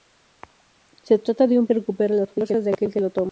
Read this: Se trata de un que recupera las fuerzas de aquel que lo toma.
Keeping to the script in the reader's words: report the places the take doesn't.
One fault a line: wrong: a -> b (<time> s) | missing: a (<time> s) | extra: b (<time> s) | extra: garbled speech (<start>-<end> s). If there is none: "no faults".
no faults